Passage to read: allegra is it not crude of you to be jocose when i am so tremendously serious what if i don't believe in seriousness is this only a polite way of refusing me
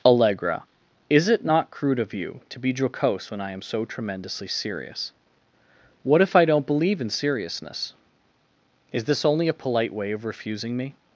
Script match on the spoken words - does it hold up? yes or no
yes